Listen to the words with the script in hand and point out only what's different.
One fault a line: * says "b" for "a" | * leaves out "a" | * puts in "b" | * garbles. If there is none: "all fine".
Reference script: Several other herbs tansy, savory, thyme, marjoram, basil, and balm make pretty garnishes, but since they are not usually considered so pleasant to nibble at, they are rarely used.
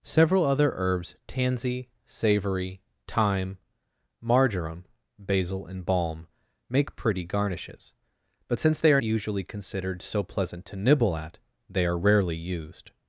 * leaves out "not"